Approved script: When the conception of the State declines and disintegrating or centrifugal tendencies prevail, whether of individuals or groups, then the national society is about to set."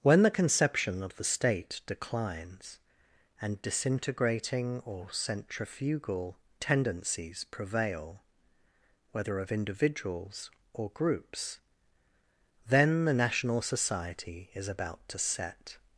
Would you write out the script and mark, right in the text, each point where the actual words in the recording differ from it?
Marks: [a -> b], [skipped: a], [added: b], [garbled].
When the conception of the State declines and disintegrating or centrifugal tendencies prevail, whether of individuals or groups, then the national society is about to set."